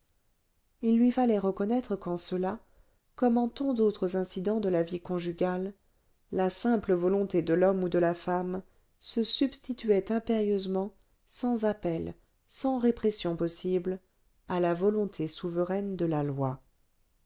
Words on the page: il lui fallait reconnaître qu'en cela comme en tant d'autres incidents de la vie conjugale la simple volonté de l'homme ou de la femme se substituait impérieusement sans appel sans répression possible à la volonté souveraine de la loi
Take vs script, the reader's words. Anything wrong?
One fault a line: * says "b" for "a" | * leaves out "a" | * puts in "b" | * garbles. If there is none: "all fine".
all fine